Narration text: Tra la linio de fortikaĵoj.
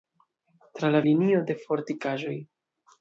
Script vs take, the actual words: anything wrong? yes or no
no